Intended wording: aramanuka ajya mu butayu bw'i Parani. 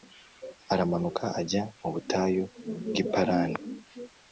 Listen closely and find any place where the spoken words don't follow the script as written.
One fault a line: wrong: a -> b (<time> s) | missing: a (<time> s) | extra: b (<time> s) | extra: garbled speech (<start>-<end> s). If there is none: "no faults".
no faults